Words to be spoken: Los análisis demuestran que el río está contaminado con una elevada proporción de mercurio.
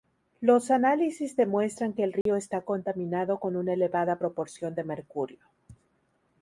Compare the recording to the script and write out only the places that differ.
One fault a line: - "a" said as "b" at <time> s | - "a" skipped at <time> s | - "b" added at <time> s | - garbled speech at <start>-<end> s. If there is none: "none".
none